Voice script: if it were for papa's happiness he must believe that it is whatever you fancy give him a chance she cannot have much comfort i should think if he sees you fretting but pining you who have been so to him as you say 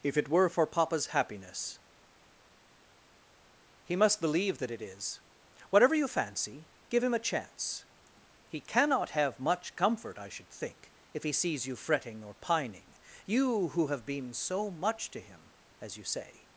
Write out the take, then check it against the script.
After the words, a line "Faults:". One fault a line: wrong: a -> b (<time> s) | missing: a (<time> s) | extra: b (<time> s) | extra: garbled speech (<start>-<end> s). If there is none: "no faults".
if it were for papa's happiness he must believe that it is whatever you fancy give him a chance he cannot have much comfort i should think if he sees you fretting or pining you who have been so much to him as you say
Faults:
wrong: she -> he (8.5 s)
wrong: but -> or (12.2 s)
extra: much (14.7 s)